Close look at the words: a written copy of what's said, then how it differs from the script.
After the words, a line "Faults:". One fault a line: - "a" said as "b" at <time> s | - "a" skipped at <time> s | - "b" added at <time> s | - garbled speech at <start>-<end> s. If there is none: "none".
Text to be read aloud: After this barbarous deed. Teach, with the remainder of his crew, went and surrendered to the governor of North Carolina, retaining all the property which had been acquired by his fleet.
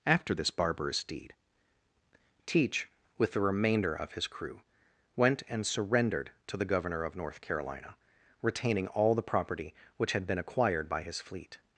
After this barbarous deed. Teach, with the remainder of his crew, went and surrendered to the governor of North Carolina, retaining all the property which had been acquired by his fleet.
Faults:
none